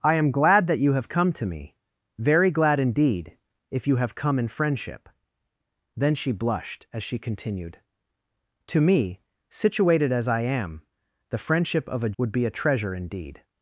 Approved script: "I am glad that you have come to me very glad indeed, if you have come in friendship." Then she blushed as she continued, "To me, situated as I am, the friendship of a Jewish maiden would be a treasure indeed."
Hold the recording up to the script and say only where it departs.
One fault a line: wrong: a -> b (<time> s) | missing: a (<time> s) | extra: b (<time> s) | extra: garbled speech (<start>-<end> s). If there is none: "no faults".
missing: Jewish maiden (12.2 s)